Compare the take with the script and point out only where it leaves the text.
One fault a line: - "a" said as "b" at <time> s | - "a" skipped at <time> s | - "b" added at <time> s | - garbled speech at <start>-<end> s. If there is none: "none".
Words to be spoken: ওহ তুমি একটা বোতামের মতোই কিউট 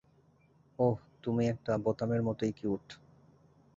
none